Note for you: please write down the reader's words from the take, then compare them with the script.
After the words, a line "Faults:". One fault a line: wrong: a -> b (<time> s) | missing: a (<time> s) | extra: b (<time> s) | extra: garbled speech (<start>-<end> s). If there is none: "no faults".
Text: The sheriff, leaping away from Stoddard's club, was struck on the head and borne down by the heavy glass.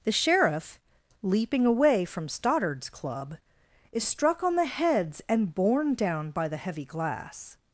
The sheriff, leaping away from Stoddard's club, is struck on the heads and borne down by the heavy glass.
Faults:
wrong: was -> is (3.9 s)
wrong: head -> heads (4.7 s)